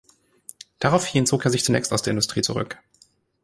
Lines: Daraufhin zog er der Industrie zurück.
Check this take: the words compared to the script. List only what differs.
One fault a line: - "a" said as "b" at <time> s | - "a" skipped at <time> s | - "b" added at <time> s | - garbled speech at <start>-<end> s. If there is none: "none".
- "sich zunächst aus" added at 1.5 s